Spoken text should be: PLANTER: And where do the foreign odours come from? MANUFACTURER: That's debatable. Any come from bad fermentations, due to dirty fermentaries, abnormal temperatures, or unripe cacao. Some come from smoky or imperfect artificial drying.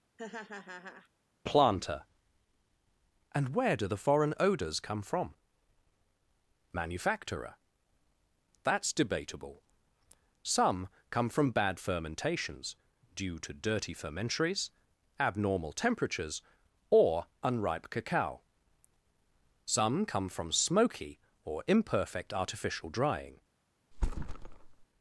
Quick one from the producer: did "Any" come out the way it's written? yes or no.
no